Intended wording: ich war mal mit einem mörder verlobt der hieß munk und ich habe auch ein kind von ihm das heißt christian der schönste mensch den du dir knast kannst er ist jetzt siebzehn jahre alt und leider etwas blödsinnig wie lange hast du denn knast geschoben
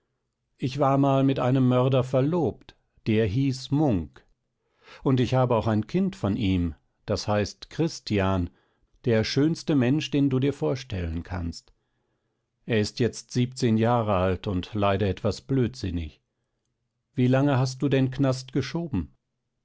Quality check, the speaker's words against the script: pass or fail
fail